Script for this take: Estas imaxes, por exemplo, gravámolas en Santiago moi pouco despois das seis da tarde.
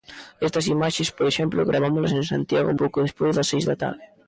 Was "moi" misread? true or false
true